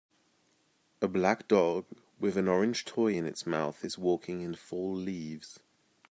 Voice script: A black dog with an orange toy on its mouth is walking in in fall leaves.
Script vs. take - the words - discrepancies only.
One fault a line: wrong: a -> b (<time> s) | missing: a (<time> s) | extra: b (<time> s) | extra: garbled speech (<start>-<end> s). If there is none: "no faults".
wrong: on -> in (3.1 s)
missing: in (4.5 s)